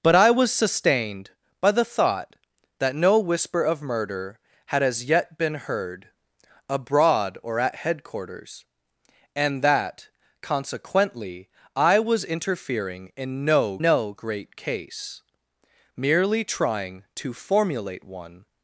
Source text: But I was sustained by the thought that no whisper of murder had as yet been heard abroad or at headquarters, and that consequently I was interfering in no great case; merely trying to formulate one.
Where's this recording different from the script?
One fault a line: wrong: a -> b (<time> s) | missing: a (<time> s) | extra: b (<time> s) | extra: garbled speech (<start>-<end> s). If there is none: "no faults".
extra: no (13.8 s)